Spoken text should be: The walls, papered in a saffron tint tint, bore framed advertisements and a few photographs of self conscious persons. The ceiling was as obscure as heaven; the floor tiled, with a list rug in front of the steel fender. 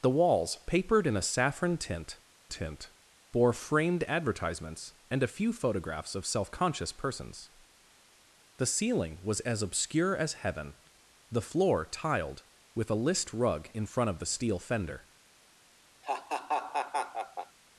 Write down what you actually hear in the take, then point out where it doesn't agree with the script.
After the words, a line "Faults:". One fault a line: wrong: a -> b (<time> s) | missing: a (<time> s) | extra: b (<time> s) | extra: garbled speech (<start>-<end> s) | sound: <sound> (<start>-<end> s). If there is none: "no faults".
The walls, papered in a saffron tint tint, bore framed advertisements and a few photographs of self conscious persons. The ceiling was as obscure as heaven; the floor tiled, with a list rug in front of the steel fender.
Faults:
sound: laugh (16.0-17.6 s)